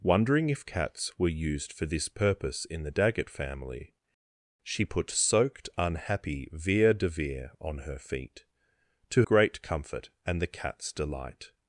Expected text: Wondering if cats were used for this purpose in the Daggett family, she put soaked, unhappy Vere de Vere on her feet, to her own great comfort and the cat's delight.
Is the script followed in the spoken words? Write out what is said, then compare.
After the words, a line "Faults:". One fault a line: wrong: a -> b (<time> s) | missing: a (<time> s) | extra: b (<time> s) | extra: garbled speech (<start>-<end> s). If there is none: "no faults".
Wondering if cats were used for this purpose in the Daggett family, she put soaked, unhappy Vere de Vere on her feet, to great comfort and the cat's delight.
Faults:
missing: her own (9.2 s)